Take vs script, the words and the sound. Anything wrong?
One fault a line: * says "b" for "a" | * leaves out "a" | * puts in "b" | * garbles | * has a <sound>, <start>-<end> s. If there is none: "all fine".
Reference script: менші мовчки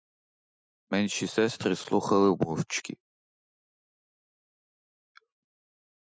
* puts in "сестри слухали"